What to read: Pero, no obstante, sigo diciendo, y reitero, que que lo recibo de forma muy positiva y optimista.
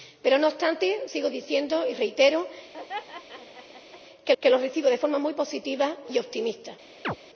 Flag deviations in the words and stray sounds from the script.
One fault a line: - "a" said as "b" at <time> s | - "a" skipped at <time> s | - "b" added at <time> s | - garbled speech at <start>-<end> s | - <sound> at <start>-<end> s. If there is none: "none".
- laugh at 2.7-4.0 s
- chirp at 7.0-7.2 s